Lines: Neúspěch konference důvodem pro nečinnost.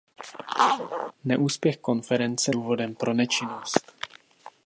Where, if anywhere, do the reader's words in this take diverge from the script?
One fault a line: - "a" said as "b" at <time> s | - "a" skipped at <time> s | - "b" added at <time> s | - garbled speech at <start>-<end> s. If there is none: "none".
none